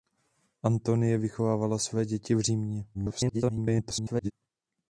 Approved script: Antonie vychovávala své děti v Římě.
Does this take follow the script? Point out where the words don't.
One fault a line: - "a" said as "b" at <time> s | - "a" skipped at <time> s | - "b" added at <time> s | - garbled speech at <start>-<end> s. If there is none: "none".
- garbled speech at 2.9-4.3 s